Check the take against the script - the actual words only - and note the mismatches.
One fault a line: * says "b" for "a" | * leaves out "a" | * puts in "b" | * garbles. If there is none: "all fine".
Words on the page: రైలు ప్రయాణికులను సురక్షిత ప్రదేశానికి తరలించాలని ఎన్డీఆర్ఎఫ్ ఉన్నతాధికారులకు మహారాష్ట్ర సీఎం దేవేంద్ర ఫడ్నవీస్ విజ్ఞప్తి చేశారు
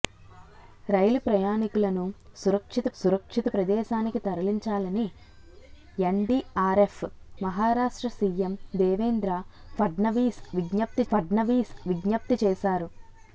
* puts in "సురక్షిత"
* leaves out "ఉన్నతాధికారులకు"
* puts in "ఫడ్నవీస్ విజ్ఞప్తి"